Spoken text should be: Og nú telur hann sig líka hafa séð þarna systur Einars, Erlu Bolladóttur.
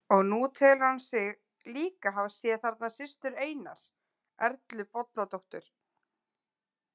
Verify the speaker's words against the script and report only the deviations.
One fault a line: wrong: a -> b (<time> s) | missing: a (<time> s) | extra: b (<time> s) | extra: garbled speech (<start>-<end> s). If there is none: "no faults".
no faults